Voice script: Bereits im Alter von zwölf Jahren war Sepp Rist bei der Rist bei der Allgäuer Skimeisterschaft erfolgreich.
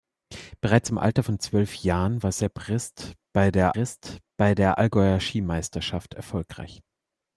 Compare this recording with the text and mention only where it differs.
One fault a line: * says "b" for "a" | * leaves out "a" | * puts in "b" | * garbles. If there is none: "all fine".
all fine